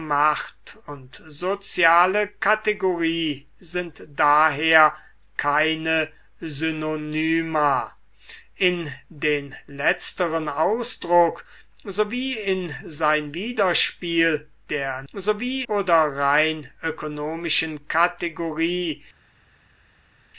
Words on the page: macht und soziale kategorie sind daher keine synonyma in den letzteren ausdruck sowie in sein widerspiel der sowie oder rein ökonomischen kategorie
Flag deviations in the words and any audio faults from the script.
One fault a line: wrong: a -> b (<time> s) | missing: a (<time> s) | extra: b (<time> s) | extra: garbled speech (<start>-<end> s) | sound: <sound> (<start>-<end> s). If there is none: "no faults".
no faults